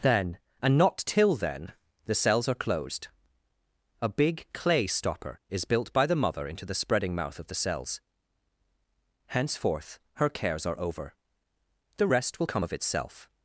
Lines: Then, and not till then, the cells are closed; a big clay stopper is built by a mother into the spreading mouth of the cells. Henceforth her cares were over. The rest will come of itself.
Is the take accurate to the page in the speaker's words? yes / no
no